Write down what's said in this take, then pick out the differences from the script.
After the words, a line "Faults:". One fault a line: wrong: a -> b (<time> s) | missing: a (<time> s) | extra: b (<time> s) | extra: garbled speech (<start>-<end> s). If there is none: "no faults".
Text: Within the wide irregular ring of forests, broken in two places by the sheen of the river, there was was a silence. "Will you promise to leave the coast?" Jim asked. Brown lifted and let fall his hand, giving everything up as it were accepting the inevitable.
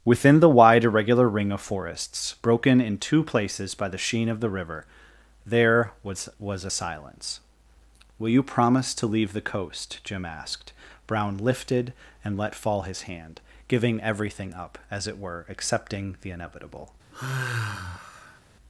Within the wide irregular ring of forests, broken in two places by the sheen of the river, there was was a silence. "Will you promise to leave the coast?" Jim asked. Brown lifted and let fall his hand, giving everything up as it were accepting the inevitable.
Faults:
no faults